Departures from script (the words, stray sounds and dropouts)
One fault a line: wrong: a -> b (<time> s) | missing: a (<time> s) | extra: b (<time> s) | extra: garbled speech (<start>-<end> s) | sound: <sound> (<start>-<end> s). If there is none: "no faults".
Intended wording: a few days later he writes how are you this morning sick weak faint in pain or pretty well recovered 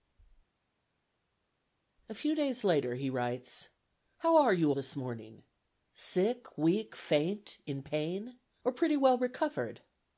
no faults